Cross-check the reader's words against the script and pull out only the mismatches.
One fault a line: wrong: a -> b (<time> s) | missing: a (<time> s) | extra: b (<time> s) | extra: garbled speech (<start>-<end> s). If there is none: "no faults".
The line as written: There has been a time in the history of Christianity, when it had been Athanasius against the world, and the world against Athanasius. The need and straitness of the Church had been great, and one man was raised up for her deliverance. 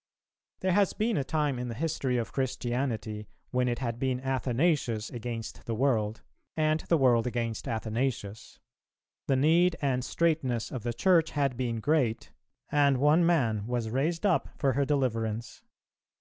no faults